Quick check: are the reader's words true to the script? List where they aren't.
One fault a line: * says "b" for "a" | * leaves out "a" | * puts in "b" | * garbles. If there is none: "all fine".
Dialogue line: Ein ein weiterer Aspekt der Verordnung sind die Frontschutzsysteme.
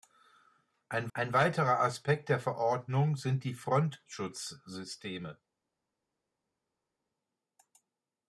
all fine